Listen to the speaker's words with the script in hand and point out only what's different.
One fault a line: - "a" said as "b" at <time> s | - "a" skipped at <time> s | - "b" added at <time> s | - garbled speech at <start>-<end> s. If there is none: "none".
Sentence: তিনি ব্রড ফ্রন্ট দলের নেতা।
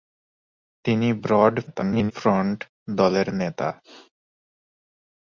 - garbled speech at 1.7-2.1 s